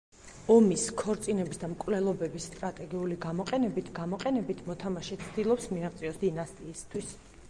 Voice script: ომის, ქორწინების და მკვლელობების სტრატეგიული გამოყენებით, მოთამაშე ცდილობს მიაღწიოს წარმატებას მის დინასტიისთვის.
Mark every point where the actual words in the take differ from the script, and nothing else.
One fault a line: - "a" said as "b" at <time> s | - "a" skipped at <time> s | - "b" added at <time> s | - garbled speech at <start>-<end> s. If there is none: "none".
- "გამოყენებით" added at 4.0 s
- "წარმატებას მის" skipped at 6.2 s